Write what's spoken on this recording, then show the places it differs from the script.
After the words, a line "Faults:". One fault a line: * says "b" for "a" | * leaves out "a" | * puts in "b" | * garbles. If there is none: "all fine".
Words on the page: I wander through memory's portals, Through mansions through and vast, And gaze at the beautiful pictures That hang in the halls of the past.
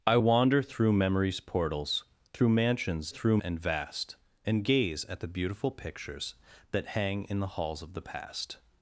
I wander through memory's portals, Through mansions through and vast, And gaze at the beautiful pictures That hang in the halls of the past.
Faults:
all fine